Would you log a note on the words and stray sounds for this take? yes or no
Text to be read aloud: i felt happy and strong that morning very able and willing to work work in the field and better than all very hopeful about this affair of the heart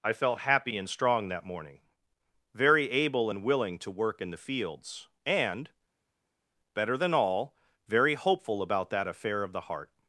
yes